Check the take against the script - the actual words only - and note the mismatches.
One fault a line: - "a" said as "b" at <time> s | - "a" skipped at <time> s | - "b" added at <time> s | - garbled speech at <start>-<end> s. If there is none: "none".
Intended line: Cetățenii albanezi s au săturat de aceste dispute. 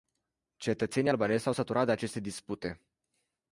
none